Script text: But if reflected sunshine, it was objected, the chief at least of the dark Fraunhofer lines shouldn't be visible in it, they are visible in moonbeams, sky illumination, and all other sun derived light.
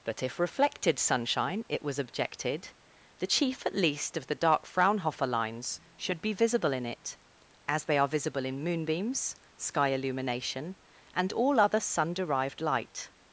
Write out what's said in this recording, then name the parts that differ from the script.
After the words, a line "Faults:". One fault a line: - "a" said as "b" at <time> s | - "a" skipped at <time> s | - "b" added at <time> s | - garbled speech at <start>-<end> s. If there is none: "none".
But if reflected sunshine, it was objected, the chief at least of the dark Fraunhofer lines should be visible in it, as they are visible in moonbeams, sky illumination, and all other sun derived light.
Faults:
- "shouldn't" said as "should" at 6.0 s
- "as" added at 7.7 s